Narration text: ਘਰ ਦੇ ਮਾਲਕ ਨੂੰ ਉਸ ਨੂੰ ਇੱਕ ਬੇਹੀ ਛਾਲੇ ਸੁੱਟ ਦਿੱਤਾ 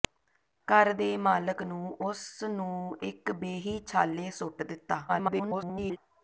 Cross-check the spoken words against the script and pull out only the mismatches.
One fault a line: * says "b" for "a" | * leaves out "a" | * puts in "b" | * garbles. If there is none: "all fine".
* garbles